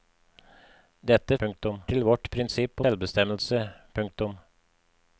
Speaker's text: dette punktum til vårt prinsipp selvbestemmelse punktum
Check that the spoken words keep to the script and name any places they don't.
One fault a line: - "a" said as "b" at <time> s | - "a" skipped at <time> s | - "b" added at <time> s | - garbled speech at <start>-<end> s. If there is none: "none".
none